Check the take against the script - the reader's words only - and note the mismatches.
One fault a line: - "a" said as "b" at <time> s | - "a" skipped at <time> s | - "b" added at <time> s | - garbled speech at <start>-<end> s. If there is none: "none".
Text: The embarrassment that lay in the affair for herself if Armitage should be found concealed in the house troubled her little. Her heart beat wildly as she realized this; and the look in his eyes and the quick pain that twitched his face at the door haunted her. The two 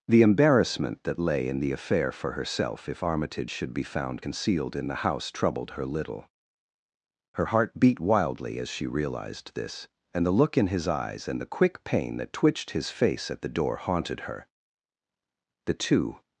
none